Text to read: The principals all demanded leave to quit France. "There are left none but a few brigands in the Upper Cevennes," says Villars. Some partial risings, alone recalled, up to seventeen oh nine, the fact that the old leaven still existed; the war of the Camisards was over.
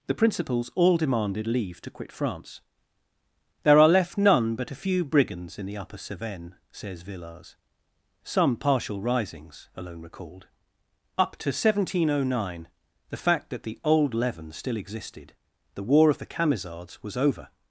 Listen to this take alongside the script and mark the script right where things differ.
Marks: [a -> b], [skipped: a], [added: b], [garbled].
The principals all demanded leave to quit France. "There are left none but a few brigands in the Upper Cevennes," says Villars. Some partial risings, alone recalled, up to seventeen oh nine, the fact that the old leaven still existed; the war of the Camisards was over.